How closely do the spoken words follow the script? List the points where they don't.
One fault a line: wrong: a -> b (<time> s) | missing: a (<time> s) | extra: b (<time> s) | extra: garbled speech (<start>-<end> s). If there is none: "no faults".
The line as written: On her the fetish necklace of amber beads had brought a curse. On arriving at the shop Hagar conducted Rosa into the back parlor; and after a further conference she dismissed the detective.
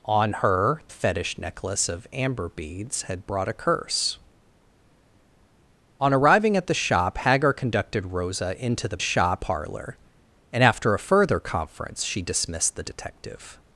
missing: the (0.8 s)
wrong: back -> shop (9.0 s)